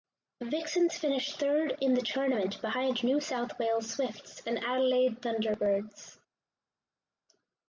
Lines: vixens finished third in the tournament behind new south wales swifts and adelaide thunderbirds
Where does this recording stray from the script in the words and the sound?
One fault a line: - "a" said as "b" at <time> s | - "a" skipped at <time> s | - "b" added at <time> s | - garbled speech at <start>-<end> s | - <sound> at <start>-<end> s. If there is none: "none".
none